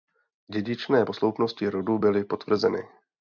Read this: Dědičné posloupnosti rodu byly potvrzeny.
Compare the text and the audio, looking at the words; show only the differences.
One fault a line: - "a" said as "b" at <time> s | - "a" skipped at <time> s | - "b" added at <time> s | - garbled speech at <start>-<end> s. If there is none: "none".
none